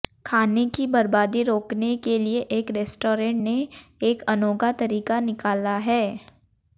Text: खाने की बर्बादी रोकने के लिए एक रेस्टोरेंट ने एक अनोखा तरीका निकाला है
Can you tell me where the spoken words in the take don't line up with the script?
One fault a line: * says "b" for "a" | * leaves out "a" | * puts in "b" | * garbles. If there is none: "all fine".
all fine